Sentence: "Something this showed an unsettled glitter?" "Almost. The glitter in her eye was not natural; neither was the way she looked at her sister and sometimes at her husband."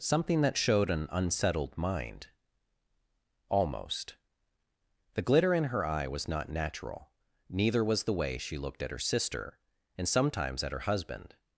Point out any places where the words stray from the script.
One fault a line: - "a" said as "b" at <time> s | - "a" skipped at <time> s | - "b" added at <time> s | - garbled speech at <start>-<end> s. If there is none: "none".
- "this" said as "that" at 0.4 s
- "glitter" said as "mind" at 1.8 s